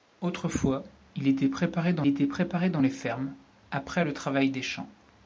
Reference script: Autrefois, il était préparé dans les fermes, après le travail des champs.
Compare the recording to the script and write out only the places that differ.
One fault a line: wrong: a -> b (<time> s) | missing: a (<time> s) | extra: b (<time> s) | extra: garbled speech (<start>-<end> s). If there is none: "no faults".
extra: était préparé dans (2.1 s)